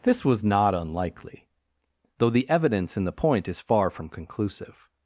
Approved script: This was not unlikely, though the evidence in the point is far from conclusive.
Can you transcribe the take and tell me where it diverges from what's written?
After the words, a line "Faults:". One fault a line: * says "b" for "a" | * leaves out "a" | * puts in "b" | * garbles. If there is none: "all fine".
This was not unlikely, though the evidence in the point is far from conclusive.
Faults:
all fine